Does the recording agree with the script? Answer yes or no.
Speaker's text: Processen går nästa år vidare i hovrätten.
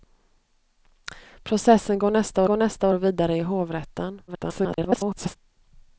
no